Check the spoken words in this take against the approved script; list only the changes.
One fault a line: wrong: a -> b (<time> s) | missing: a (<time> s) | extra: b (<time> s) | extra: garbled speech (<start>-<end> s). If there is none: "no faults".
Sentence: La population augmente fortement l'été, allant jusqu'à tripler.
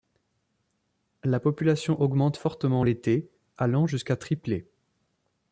no faults